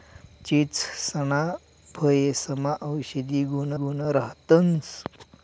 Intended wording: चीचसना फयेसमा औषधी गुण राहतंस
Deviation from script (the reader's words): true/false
true